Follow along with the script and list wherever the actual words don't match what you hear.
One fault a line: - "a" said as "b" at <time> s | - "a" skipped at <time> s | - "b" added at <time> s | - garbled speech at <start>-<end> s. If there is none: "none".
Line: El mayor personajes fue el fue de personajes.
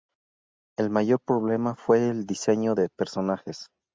- "personajes" said as "problema" at 1.2 s
- "fue" said as "diseño" at 2.2 s